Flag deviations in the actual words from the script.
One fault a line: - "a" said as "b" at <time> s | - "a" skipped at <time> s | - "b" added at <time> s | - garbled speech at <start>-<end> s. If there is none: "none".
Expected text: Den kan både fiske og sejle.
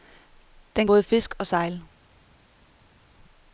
- "kan" skipped at 0.9 s